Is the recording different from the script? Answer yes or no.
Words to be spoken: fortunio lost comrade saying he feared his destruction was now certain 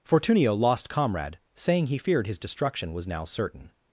no